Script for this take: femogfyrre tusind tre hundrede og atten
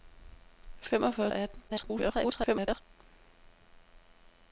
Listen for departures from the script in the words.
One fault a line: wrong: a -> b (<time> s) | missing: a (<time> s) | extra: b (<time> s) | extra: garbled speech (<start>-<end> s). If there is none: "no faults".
missing: tusind tre hundrede (1.3 s)
extra: garbled speech (1.7-2.8 s)